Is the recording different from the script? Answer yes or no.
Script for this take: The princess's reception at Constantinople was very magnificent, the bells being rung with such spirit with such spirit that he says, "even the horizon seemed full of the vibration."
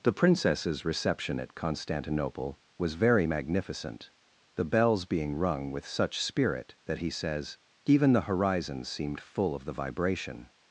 yes